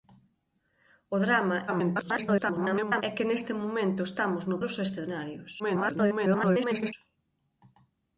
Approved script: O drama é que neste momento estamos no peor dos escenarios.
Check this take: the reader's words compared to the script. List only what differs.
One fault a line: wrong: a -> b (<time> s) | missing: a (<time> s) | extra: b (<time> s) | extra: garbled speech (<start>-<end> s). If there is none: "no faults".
extra: garbled speech (1.7-3.0 s)
missing: peor (4.6 s)
extra: garbled speech (5.6-6.9 s)